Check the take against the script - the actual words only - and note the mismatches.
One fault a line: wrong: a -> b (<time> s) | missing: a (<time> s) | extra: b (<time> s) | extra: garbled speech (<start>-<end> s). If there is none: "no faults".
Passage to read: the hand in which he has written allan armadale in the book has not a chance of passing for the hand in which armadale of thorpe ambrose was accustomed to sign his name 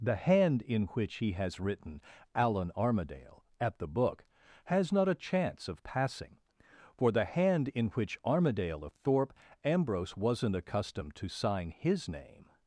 wrong: in -> at (3.6 s)
wrong: was -> wasn't (10.2 s)